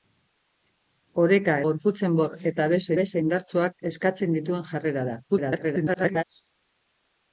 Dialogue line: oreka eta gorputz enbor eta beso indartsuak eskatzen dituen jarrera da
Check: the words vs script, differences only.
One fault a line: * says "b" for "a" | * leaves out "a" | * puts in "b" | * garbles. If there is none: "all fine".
* leaves out "eta"
* puts in "beso"
* garbles